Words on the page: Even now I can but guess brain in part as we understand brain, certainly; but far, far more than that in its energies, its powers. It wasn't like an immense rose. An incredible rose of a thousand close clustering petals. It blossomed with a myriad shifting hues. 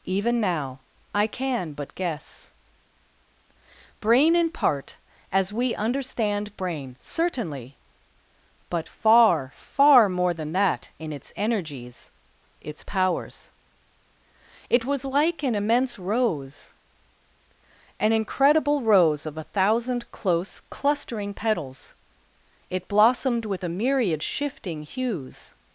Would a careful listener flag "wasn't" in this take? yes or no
yes